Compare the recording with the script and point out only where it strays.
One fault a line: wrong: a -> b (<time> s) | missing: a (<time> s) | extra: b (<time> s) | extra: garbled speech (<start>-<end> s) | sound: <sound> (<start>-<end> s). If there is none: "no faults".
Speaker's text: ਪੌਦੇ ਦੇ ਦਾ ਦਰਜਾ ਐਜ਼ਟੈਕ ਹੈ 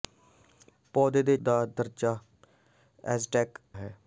no faults